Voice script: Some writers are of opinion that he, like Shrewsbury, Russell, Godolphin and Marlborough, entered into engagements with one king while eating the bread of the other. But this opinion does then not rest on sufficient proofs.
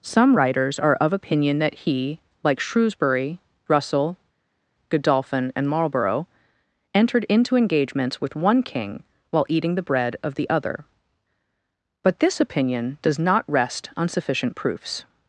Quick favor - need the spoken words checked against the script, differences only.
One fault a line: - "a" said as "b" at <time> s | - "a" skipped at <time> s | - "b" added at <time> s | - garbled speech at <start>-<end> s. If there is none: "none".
- "then" skipped at 13.2 s